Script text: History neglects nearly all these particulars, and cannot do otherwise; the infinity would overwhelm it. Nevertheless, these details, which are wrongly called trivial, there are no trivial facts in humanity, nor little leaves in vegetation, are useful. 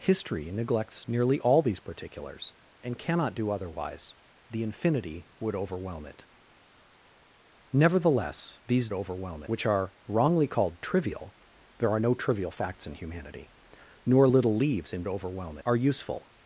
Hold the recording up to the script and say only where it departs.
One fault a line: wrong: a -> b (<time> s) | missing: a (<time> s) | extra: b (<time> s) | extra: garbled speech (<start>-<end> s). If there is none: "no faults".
wrong: details -> overwhelm (8.9 s)
wrong: vegetation -> overwhelm (15.1 s)